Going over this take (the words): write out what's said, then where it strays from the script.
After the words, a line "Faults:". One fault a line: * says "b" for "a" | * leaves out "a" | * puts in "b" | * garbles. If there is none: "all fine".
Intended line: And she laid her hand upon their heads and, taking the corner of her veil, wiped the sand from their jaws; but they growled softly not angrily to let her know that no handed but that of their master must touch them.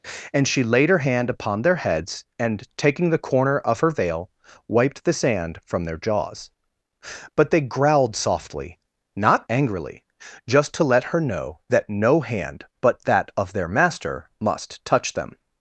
And she laid her hand upon their heads and, taking the corner of her veil, wiped the sand from their jaws; but they growled softly not angrily just to let her know that no hand but that of their master must touch them.
Faults:
* puts in "just"
* says "hand" for "handed"